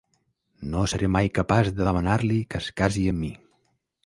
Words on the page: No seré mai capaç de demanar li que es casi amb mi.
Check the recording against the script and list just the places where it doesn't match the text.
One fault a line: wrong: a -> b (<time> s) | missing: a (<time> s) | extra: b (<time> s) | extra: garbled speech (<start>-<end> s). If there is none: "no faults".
no faults